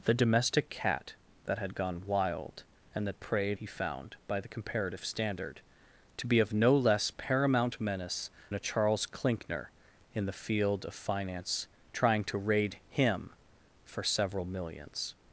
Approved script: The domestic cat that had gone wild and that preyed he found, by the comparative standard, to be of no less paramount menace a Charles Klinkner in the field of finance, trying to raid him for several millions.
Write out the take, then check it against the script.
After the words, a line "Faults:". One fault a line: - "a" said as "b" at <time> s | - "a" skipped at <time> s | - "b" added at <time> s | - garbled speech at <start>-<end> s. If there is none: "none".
The domestic cat that had gone wild and that preyed he found, by the comparative standard, to be of no less paramount menace a Charles Klinkner in the field of finance, trying to raid him for several millions.
Faults:
none